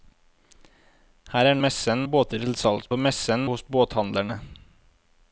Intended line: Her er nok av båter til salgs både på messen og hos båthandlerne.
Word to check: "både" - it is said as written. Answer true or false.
false